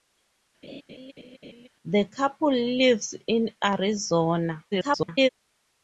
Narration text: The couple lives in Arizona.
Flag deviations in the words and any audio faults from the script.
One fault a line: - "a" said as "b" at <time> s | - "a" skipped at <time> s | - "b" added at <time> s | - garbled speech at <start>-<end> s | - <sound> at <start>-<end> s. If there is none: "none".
- laugh at 0.6-1.7 s
- garbled speech at 4.7-5.3 s